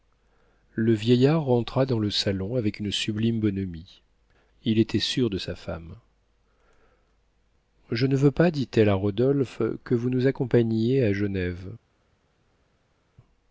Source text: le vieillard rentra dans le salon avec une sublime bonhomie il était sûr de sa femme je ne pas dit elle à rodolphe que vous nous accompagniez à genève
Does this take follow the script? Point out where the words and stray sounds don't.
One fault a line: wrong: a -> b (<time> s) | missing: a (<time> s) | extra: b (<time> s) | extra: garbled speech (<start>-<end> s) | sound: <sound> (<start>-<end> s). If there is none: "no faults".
extra: veux (8.1 s)